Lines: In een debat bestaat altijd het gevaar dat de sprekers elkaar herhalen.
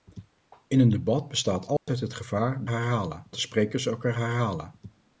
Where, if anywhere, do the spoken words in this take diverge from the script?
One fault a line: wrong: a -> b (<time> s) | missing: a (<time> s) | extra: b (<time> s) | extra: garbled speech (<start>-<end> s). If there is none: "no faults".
wrong: dat -> herhalen (2.7 s)